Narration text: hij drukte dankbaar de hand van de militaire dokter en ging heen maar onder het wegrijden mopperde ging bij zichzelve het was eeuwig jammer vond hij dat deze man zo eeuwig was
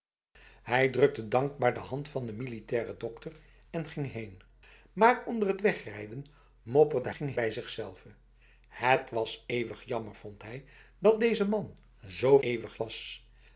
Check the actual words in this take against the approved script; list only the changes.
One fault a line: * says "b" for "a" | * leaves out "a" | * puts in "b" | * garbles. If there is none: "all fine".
all fine